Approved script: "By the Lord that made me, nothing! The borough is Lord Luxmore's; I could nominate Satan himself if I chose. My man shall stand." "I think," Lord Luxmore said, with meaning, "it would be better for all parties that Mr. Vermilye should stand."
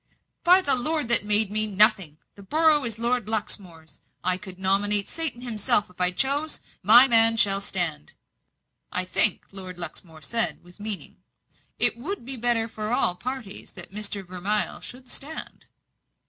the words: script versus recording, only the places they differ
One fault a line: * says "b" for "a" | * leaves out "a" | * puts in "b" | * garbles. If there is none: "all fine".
all fine